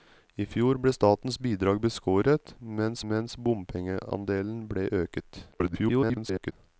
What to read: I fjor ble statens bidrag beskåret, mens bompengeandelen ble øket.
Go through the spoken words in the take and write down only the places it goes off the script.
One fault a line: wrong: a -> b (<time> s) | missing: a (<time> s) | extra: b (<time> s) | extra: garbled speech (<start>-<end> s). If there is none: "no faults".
extra: mens (3.1 s)
extra: garbled speech (5.5-6.5 s)